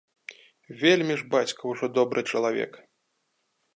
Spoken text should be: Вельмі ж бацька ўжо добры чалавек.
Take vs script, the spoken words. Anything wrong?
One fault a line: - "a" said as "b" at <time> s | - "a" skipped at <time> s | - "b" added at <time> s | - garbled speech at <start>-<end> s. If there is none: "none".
none